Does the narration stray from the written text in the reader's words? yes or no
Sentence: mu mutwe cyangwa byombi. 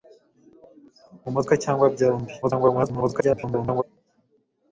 yes